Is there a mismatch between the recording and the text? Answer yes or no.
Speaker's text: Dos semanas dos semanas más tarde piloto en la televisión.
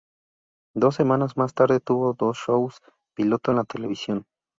yes